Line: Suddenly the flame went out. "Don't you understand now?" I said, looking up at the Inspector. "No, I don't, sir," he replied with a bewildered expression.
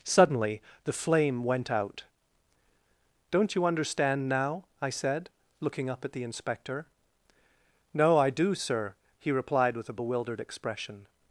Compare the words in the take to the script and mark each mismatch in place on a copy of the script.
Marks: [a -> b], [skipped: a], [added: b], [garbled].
Suddenly the flame went out. "Don't you understand now?" I said, looking up at the Inspector. "No, I [don't, -> do] sir," he replied with a bewildered expression.